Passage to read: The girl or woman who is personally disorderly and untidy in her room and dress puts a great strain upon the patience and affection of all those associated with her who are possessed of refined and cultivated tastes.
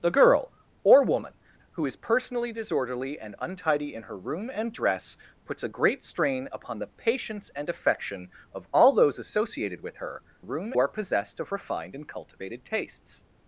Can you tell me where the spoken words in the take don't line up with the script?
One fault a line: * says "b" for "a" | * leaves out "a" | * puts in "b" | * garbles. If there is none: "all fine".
* says "room" for "who"